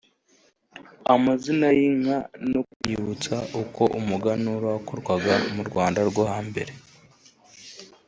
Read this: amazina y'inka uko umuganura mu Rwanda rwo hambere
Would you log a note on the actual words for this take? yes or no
yes